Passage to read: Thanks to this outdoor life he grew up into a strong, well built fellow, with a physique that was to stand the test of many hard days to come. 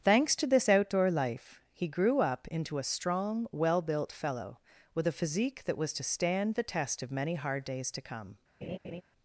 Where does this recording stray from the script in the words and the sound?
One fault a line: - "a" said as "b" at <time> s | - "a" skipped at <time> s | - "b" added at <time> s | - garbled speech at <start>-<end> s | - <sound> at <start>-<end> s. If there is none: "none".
- laugh at 8.6-9.0 s